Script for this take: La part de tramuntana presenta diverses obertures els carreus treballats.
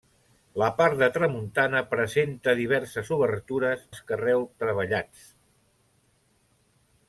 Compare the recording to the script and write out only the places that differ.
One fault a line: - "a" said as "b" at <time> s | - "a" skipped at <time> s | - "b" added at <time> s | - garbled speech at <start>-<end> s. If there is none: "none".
none